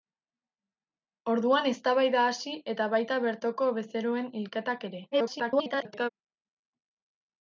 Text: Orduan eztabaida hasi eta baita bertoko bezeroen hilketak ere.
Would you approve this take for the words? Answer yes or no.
no